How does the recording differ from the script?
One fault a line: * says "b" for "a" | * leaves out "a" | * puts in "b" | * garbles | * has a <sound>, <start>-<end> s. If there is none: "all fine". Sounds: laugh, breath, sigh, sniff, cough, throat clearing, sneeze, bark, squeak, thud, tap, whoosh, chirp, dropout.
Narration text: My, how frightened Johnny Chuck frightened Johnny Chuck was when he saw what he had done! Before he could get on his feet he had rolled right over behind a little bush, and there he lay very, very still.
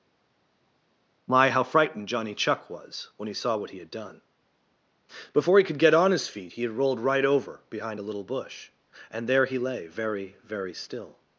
* leaves out "frightened Johnny Chuck"